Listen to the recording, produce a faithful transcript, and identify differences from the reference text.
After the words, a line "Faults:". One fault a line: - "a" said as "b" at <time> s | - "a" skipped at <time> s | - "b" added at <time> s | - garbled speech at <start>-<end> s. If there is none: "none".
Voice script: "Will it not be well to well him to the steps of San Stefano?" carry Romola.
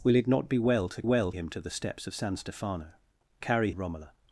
"Will it not be well to well him to the steps of San Stefano?" carry Romola.
Faults:
none